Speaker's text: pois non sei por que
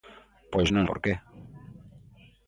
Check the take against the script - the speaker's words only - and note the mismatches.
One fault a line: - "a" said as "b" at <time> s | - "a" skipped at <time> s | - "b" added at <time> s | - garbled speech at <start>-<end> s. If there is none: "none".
- "sei" skipped at 0.9 s